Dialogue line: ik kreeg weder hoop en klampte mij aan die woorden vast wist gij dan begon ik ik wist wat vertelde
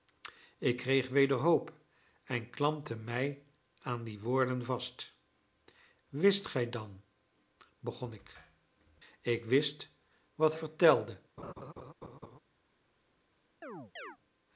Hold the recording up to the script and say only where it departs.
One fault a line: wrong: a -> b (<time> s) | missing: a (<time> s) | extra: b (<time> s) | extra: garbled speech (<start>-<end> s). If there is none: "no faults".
no faults